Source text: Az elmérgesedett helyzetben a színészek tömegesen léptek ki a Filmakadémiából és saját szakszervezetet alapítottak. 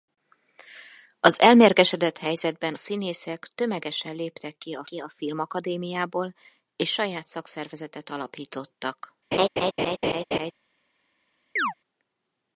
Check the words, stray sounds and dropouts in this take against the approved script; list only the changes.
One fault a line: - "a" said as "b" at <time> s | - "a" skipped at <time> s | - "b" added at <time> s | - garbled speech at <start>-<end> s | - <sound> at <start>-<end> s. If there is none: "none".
- "a" skipped at 2.7 s
- "ki a" added at 4.8 s
- laugh at 9.3-10.5 s
- chirp at 11.6-11.7 s